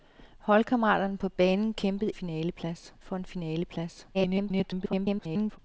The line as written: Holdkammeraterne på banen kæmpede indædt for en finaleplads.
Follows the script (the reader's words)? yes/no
no